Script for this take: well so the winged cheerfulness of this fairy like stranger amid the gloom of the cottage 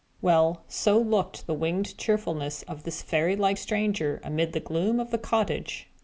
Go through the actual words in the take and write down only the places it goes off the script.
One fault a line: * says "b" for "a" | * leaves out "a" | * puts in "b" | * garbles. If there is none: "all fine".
* puts in "looked"